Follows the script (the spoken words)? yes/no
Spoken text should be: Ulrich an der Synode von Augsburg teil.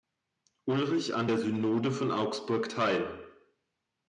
yes